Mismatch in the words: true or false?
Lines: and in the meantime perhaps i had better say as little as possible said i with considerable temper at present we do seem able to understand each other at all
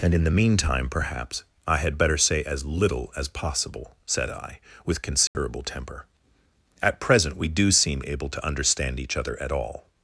false